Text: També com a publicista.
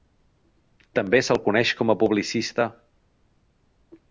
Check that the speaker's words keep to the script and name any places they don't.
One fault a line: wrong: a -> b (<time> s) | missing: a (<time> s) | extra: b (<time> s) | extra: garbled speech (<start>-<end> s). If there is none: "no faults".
extra: se'l coneix (1.2 s)